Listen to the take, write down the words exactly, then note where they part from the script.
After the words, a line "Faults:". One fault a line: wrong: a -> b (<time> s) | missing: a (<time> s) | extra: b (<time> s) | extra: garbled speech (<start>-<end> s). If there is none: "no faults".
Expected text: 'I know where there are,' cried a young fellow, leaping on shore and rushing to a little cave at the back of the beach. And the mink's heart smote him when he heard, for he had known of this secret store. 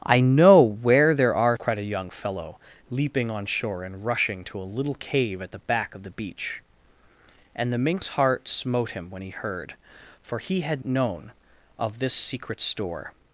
'I know where there are,' cried a young fellow, leaping on shore and rushing to a little cave at the back of the beach. And the mink's heart smote him when he heard, for he had known of this secret store.
Faults:
no faults